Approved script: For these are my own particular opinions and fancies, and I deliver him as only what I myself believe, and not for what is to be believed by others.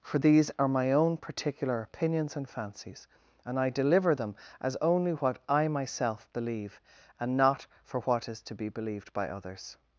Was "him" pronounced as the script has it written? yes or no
no